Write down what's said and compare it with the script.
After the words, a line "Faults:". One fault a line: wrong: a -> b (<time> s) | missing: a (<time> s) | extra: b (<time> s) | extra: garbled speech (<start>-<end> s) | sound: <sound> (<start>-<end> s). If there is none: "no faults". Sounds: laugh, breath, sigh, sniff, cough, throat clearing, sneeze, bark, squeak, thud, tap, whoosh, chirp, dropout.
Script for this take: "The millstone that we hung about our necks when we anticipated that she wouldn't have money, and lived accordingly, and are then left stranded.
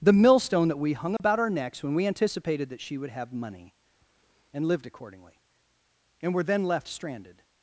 "The millstone that we hung about our necks when we anticipated that she would have money, and lived accordingly, and were then left stranded.
Faults:
sound: dropout (1.2-1.2 s)
wrong: wouldn't -> would (3.0 s)
wrong: are -> were (6.3 s)